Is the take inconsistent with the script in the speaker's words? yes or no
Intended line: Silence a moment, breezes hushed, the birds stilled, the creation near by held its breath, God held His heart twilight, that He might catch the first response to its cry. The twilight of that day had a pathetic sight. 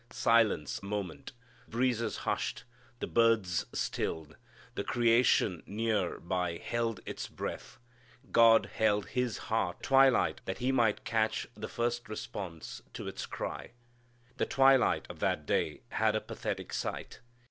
no